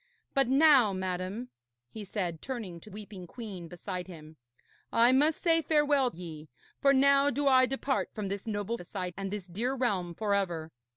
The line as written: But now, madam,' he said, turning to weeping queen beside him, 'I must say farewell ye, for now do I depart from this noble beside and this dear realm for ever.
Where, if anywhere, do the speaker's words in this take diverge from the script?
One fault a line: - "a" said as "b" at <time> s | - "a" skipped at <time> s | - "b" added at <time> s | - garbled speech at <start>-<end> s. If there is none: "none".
none